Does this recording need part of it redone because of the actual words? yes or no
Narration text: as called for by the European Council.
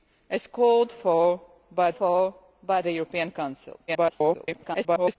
yes